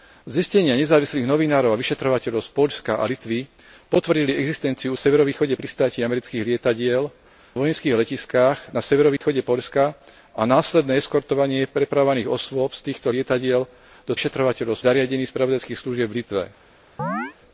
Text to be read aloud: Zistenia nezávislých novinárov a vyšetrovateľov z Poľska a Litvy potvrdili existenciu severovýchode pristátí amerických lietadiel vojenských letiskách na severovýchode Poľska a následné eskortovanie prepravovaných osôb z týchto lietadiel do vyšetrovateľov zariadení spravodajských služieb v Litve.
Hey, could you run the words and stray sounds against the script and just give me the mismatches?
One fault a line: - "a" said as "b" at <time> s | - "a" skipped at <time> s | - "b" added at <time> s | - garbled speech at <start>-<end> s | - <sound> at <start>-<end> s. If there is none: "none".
- dropout at 9.2-9.2 s
- chirp at 17.0-17.3 s